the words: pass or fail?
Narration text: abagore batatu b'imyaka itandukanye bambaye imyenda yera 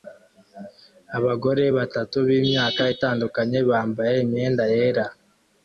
pass